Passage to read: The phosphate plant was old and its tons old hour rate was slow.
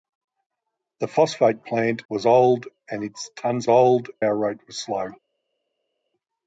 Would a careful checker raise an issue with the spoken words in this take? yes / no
no